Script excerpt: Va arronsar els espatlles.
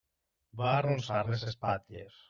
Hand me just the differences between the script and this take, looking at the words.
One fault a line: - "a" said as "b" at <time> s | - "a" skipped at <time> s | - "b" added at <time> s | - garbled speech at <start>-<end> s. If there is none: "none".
- "els" said as "les" at 1.3 s